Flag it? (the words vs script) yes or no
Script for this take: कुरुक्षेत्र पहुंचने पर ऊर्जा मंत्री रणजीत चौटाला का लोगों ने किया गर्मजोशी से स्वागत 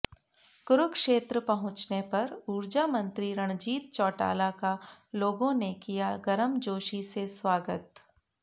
no